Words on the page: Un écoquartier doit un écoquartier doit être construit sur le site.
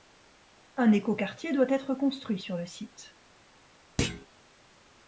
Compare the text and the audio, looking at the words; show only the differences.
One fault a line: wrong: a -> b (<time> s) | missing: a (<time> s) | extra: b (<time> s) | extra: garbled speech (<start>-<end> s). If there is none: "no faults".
missing: un écoquartier doit (1.7 s)